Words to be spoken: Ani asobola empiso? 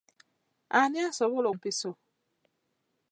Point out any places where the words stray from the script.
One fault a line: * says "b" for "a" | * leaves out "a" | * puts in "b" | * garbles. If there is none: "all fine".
all fine